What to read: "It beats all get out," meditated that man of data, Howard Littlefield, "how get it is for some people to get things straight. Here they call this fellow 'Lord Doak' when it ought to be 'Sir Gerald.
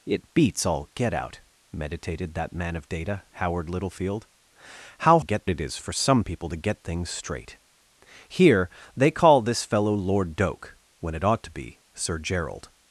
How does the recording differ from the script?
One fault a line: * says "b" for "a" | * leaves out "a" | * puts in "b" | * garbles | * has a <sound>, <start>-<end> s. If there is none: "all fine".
all fine